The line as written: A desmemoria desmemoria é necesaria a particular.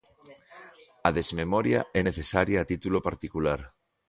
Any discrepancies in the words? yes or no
yes